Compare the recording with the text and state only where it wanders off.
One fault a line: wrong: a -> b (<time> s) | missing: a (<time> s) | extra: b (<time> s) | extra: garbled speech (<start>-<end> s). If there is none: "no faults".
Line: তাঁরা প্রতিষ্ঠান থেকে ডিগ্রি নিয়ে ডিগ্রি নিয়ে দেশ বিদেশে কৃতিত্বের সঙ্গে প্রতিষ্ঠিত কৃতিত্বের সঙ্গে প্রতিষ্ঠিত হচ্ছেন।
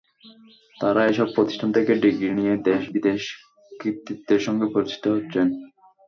extra: এসব (1.1 s)
missing: ডিগ্রি নিয়ে (2.5 s)
missing: কৃতিত্বের সঙ্গে প্রতিষ্ঠিত (5.0 s)